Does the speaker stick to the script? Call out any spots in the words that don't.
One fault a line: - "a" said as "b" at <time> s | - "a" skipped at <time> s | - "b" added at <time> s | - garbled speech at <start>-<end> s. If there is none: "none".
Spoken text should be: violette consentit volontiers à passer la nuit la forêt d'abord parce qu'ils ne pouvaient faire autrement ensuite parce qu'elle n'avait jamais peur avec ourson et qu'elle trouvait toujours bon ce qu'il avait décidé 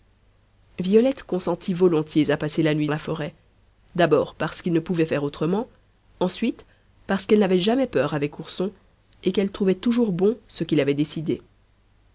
none